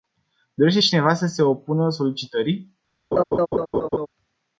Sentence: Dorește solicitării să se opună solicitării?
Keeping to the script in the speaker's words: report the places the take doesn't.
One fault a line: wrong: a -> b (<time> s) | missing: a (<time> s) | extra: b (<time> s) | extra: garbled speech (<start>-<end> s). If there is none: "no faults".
wrong: solicitării -> cineva (0.8 s)